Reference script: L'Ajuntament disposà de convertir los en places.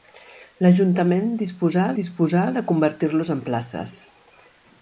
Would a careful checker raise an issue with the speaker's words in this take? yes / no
yes